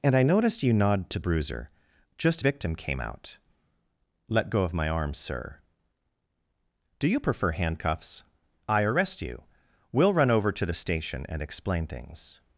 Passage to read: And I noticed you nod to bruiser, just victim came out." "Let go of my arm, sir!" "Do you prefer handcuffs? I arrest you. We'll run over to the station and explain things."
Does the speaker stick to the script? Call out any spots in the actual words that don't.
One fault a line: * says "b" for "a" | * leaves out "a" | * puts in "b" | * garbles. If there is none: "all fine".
all fine